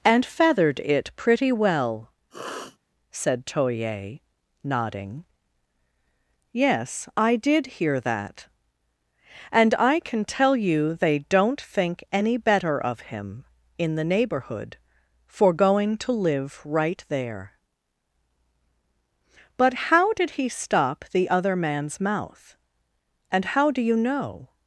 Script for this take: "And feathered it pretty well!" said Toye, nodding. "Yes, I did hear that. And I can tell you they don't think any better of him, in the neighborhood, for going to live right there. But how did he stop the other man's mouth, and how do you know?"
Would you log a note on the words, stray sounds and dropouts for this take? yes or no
yes